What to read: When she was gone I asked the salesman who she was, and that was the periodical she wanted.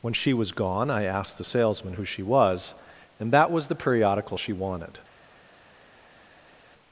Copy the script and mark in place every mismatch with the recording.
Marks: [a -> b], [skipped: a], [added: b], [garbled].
When she was gone I asked the salesman who she was, and that was the periodical she wanted.